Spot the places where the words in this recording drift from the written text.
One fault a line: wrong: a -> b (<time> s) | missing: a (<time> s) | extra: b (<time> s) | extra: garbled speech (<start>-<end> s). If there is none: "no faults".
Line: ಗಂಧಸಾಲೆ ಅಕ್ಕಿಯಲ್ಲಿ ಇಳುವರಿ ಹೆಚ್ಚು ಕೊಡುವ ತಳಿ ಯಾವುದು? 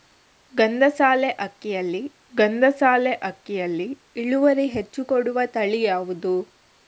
extra: ಗಂಧಸಾಲೆ ಅಕ್ಕಿಯಲ್ಲಿ (2.3 s)